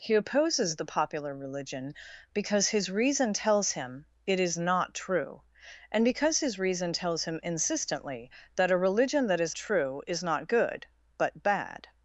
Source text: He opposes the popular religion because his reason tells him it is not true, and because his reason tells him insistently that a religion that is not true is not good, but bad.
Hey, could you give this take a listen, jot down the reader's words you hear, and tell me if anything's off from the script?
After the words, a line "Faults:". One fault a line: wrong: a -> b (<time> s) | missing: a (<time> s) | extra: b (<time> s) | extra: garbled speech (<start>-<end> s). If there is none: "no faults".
He opposes the popular religion because his reason tells him it is not true, and because his reason tells him insistently that a religion that is true is not good, but bad.
Faults:
missing: not (9.5 s)